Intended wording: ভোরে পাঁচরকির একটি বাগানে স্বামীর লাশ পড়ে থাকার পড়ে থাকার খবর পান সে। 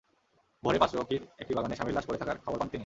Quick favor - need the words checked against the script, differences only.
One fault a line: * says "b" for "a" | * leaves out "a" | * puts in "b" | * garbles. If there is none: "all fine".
* leaves out "পড়ে থাকার"
* says "তিনি" for "সে"